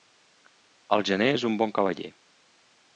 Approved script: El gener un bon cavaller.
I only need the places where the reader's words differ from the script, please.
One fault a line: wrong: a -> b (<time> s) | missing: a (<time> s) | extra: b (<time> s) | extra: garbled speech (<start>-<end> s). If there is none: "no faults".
extra: és (1.3 s)